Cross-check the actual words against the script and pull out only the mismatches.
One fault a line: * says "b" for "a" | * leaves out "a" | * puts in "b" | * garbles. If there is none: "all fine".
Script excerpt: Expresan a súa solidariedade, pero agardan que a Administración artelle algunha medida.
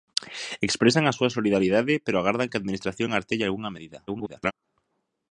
* garbles